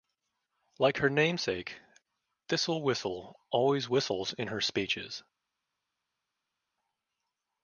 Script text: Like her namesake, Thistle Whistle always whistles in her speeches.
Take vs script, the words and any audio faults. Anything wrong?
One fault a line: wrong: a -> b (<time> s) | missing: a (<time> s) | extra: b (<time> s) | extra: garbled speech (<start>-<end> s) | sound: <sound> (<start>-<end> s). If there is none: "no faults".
no faults